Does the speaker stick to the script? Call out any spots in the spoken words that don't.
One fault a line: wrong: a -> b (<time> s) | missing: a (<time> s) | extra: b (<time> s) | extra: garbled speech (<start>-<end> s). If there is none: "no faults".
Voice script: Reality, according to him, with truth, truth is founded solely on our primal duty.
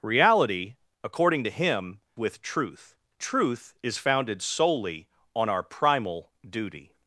no faults